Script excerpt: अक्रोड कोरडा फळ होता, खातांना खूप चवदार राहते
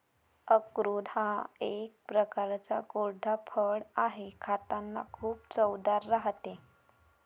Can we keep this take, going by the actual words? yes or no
no